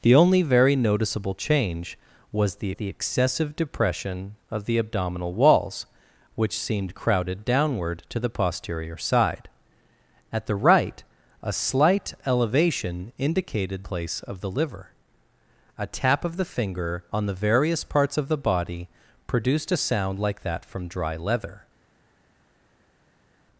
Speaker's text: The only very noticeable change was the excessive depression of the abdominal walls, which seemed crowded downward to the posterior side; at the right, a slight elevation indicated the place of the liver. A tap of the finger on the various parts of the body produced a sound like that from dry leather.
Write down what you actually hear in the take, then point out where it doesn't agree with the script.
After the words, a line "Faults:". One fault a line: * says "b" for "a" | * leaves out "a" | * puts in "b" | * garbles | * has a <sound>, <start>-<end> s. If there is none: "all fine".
The only very noticeable change was the the excessive depression of the abdominal walls, which seemed crowded downward to the posterior side; at the right, a slight elevation indicated place of the liver. A tap of the finger on the various parts of the body produced a sound like that from dry leather.
Faults:
* puts in "the"
* leaves out "the"